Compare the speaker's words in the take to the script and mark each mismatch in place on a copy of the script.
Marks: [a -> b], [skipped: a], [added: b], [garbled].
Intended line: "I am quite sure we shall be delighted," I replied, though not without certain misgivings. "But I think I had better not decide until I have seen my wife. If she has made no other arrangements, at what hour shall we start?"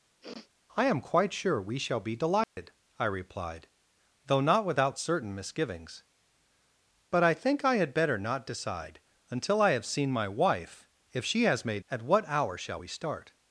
"I am quite sure we shall be delighted," I replied, though not without certain misgivings. "But I think I had better not decide until I have seen my wife. If she has made [skipped: no other arrangements,] at what hour shall we start?"